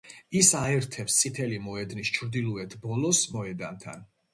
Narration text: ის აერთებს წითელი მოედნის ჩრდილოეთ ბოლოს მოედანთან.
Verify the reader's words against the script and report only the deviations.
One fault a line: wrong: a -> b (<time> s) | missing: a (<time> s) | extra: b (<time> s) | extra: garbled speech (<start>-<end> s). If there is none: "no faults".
no faults